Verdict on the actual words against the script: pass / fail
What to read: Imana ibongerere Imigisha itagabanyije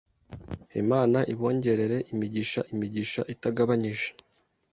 fail